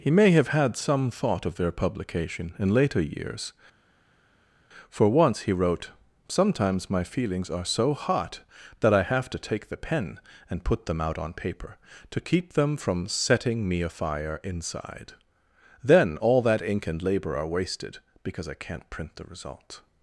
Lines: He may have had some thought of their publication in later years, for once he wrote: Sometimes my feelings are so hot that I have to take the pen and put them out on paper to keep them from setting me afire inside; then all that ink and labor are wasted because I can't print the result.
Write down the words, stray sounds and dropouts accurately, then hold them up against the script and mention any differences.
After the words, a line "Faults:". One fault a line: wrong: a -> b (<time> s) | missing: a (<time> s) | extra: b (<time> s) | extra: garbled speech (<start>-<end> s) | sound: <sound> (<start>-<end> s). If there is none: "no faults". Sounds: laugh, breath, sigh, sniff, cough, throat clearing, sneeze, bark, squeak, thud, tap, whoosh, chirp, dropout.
He may have had some thought of their publication in later years, for once he wrote: Sometimes my feelings are so hot that I have to take the pen and put them out on paper to keep them from setting me afire inside; then all that ink and labor are wasted because I can't print the result.
Faults:
no faults